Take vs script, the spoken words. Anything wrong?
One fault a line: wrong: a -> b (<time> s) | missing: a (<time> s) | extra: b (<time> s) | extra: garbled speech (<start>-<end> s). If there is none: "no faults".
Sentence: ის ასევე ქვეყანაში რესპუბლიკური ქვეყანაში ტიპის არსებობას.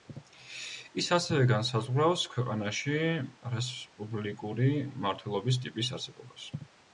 extra: განსაზღვრავს (1.5 s)
wrong: ქვეყანაში -> მმართველობის (5.0 s)